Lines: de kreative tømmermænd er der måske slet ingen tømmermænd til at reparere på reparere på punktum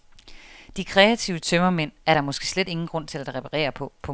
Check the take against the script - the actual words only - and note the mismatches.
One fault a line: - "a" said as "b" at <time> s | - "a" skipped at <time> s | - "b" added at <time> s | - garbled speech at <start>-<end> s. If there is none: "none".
- "tømmermænd" said as "grund" at 2.9 s
- "reparere på" skipped at 3.9 s